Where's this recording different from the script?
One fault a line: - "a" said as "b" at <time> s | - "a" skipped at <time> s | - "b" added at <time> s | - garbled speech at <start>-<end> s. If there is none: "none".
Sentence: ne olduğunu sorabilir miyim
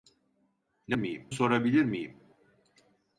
- "olduğunu" said as "miyim" at 0.9 s